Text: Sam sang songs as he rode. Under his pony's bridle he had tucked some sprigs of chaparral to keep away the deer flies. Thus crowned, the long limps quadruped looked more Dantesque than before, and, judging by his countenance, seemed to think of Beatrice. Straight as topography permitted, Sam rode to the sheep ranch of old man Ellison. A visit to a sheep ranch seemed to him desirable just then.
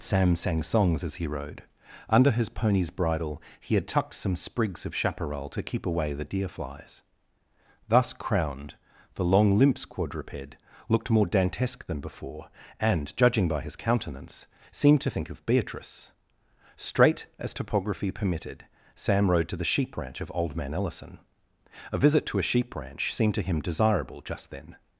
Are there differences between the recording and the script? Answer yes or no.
no